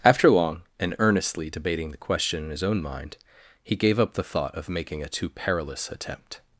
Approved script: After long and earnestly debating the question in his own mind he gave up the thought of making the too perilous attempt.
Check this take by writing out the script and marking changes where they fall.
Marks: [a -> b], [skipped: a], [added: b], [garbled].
After long and earnestly debating the question in his own mind he gave up the thought of making [the -> a] too perilous attempt.